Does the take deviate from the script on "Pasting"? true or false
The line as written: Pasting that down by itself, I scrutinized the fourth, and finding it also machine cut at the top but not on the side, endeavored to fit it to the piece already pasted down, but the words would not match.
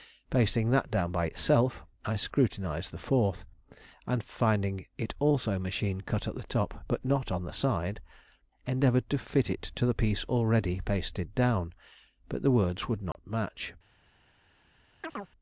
false